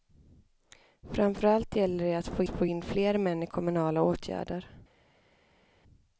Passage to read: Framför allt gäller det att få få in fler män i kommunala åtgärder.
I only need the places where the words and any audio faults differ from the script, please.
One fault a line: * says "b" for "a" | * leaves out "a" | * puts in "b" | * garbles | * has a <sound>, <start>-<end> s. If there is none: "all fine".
all fine